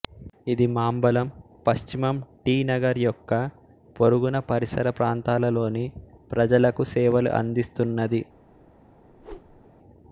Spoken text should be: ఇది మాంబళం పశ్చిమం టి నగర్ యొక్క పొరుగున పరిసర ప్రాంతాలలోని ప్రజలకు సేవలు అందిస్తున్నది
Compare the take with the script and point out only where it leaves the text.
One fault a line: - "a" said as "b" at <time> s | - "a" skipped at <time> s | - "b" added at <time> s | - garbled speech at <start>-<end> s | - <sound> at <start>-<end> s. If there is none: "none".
- whoosh at 9.1-9.7 s